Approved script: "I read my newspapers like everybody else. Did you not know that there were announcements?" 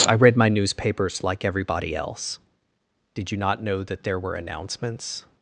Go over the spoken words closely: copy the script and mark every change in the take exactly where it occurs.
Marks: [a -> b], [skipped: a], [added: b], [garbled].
"I read my newspapers like everybody else. Did you not know that there were announcements?"